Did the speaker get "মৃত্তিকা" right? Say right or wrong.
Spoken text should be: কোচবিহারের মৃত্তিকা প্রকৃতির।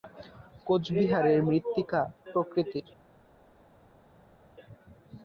right